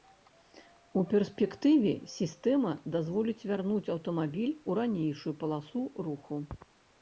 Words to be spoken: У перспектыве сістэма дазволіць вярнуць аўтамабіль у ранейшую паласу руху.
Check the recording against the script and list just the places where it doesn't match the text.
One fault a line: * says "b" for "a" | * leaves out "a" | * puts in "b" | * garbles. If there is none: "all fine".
all fine